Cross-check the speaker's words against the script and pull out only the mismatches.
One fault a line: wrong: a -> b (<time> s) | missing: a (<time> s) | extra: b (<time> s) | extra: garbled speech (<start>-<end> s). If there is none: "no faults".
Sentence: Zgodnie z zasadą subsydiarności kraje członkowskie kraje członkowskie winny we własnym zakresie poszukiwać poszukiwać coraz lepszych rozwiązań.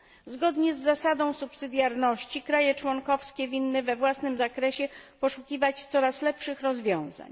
missing: kraje członkowskie (3.5 s)
missing: poszukiwać (5.8 s)